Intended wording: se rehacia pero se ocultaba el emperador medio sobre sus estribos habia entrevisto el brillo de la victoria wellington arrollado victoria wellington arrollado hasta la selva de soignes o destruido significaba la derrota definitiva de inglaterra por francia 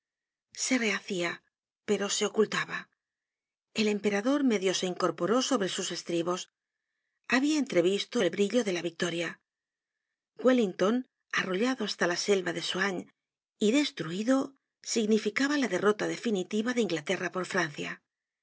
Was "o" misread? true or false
true